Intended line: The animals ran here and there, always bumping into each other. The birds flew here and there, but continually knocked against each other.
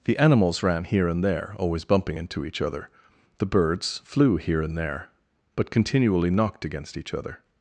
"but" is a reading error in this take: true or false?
false